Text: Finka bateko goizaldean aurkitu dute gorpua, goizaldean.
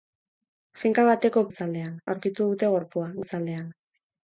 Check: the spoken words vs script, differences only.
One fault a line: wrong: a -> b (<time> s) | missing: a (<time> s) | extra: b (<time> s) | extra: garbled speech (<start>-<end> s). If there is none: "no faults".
no faults